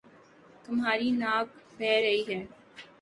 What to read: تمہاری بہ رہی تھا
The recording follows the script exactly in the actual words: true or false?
false